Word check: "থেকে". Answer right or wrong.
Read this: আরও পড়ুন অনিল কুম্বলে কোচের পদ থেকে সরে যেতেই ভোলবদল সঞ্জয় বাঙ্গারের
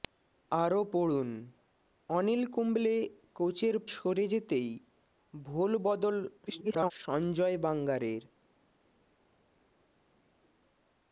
wrong